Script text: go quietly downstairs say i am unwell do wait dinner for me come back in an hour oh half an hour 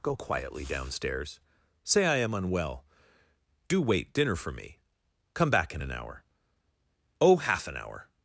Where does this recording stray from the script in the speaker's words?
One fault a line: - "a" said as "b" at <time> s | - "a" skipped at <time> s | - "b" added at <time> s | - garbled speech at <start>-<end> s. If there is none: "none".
none